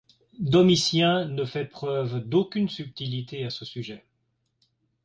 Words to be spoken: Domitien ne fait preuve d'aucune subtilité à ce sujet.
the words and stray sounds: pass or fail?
pass